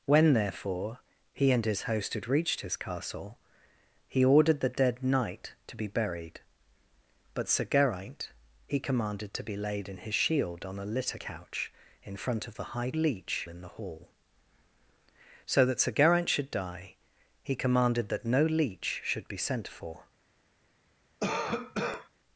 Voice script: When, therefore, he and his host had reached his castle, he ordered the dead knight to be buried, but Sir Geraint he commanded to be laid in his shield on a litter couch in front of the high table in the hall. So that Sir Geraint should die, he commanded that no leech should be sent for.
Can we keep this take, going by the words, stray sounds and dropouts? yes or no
no